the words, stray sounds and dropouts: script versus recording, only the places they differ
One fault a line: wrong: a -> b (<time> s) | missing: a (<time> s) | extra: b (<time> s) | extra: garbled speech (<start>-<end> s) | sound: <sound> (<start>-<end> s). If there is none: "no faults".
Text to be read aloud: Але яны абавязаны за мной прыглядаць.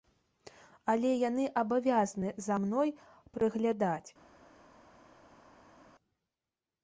no faults